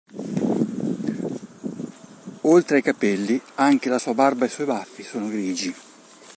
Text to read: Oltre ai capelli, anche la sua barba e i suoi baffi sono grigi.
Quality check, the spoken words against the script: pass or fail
pass